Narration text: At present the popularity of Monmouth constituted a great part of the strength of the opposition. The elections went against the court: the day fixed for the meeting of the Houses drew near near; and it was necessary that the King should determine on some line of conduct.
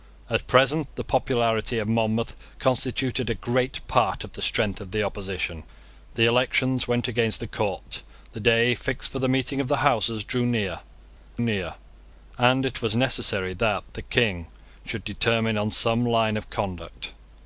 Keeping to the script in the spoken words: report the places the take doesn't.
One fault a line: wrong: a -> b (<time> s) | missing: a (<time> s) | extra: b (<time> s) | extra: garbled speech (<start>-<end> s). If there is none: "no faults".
no faults